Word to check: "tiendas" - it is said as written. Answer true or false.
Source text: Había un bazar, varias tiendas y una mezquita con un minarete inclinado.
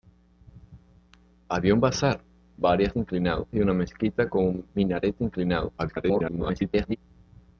false